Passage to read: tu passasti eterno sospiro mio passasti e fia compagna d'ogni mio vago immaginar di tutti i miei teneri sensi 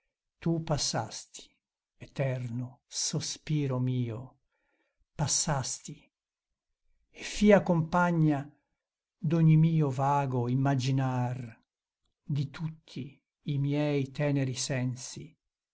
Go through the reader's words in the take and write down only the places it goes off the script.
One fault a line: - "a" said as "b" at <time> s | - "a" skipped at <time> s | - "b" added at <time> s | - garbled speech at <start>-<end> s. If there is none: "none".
none